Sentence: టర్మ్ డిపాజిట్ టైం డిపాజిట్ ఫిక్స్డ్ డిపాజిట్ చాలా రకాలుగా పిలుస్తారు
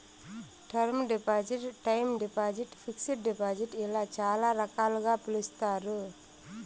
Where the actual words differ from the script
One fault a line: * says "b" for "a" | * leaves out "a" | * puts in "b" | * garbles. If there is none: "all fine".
* puts in "ఇలా"